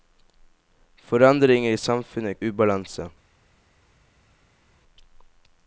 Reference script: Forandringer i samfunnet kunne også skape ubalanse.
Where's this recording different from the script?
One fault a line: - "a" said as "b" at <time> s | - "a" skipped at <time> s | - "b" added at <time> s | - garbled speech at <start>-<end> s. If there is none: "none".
- "kunne også skape" skipped at 2.4 s